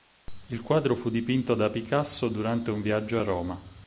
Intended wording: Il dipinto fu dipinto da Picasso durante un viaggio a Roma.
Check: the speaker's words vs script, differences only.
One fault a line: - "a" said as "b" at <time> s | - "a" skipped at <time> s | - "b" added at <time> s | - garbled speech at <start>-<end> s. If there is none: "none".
- "dipinto" said as "quadro" at 0.6 s